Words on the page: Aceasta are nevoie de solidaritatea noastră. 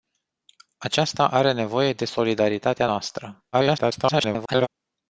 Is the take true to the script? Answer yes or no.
no